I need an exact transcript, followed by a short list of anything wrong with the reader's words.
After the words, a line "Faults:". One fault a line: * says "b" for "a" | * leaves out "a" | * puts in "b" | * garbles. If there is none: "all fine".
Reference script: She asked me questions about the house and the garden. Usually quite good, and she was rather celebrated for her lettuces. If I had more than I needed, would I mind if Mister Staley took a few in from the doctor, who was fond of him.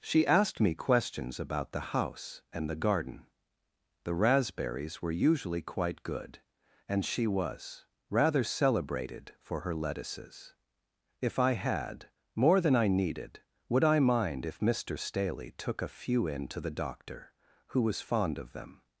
She asked me questions about the house and the garden. The raspberries were usually quite good, and she was rather celebrated for her lettuces. If I had more than I needed, would I mind if Mister Staley took a few in to the doctor, who was fond of them.
Faults:
* puts in "The raspberries were"
* says "to" for "from"
* says "them" for "him"